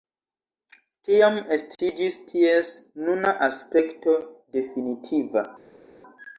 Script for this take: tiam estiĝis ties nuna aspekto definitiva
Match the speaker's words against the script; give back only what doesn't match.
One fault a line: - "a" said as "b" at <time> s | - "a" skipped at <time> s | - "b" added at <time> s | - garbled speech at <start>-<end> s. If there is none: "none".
none